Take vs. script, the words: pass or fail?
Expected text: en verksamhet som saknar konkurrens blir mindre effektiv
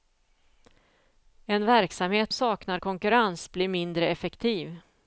fail